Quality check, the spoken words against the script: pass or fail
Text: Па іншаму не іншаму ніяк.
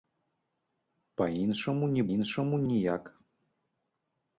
pass